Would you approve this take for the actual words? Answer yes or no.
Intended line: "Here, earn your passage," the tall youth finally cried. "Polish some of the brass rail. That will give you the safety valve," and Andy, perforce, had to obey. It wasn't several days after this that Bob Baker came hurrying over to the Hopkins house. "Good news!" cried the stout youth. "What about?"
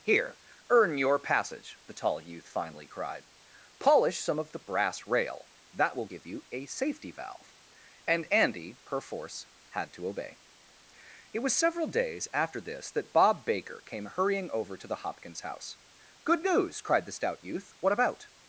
no